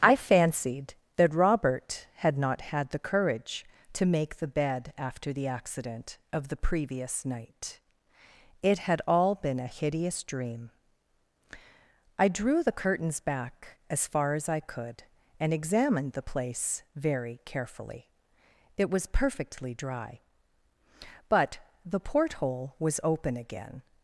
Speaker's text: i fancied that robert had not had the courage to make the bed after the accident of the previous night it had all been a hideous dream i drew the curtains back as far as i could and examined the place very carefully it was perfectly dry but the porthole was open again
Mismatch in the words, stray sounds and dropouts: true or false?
false